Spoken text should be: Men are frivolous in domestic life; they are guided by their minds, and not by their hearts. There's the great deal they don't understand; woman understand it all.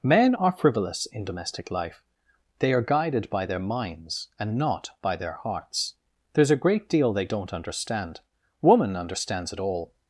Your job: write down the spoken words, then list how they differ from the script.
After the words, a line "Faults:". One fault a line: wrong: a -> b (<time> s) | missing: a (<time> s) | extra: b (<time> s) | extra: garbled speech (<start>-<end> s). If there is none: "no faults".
Men are frivolous in domestic life; they are guided by their minds, and not by their hearts. There's a great deal they don't understand; woman understands it all.
Faults:
wrong: the -> a (6.5 s)
wrong: understand -> understands (9.0 s)